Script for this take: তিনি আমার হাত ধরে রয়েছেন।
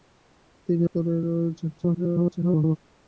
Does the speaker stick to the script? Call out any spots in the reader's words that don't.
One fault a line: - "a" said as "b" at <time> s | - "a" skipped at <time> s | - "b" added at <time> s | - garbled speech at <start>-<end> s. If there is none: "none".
- "আমার হাত" skipped at 0.8 s
- garbled speech at 1.8-2.8 s